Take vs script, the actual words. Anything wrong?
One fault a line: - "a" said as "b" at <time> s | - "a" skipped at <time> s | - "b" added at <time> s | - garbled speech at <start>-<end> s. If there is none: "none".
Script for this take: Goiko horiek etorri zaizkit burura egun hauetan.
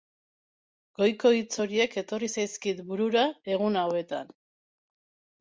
- "hitz" added at 1.4 s